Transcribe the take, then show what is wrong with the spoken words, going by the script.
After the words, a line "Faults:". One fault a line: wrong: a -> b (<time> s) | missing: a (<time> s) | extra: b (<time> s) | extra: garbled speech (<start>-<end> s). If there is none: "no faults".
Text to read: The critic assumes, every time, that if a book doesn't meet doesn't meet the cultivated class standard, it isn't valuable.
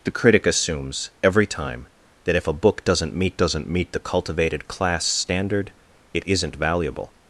The critic assumes, every time, that if a book doesn't meet doesn't meet the cultivated class standard, it isn't valuable.
Faults:
no faults